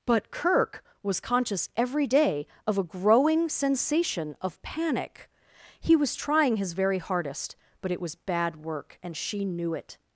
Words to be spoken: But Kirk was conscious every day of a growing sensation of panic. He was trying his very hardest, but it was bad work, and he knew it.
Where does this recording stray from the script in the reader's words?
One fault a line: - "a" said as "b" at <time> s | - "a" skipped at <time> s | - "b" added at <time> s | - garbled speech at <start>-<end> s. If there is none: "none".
- "he" said as "she" at 9.2 s